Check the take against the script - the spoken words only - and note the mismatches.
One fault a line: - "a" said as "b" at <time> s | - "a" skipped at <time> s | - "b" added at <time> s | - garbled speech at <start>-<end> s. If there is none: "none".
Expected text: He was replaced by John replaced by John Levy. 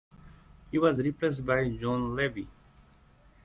- "replaced by John" skipped at 2.1 s